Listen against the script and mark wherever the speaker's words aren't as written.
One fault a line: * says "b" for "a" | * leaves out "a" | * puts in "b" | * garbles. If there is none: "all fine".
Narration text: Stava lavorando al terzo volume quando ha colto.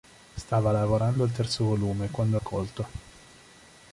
all fine